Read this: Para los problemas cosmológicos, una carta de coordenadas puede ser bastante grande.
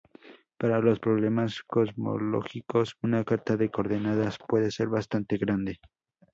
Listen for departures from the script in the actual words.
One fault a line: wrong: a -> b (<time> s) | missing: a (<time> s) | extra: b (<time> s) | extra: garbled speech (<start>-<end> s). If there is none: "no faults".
no faults